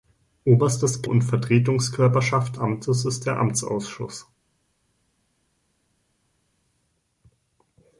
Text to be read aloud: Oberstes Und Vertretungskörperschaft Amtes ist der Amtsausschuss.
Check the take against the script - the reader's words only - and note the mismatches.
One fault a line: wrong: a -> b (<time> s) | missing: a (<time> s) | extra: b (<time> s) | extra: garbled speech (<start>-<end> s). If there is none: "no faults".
no faults